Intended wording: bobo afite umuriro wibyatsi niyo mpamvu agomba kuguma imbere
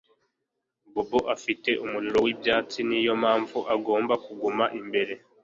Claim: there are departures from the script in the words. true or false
false